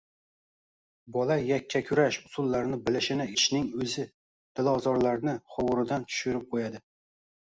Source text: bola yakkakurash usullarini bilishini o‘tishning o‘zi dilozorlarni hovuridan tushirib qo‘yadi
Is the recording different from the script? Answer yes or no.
no